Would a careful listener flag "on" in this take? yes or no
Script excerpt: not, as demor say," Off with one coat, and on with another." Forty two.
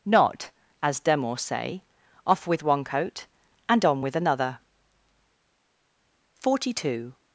no